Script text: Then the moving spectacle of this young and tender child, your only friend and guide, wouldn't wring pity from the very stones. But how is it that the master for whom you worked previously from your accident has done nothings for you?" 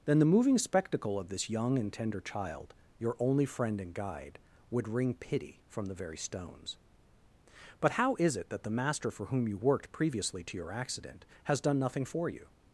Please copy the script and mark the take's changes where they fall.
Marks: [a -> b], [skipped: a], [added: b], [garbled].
Then the moving spectacle of this young and tender child, your only friend and guide, [wouldn't -> would] wring pity from the very stones. But how is it that the master for whom you worked previously [from -> to] your accident has done [nothings -> nothing] for you?"